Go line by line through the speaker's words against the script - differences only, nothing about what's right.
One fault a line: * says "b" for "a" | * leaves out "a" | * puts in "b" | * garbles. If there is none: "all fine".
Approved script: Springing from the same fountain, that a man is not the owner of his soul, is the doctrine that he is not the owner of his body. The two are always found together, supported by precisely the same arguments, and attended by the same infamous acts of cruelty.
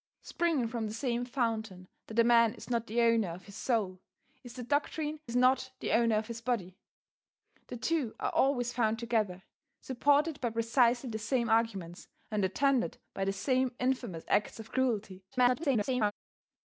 * leaves out "that he"
* garbles